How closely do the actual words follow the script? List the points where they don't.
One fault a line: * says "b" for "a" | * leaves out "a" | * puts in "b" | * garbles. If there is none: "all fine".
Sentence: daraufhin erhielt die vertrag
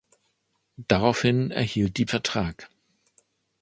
all fine